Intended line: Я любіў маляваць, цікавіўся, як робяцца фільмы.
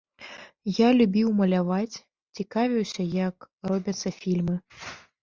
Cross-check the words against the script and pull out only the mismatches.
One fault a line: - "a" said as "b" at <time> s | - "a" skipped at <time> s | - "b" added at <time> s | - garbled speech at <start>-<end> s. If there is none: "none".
none